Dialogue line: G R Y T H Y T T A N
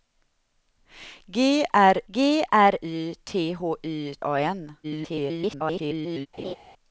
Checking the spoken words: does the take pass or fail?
fail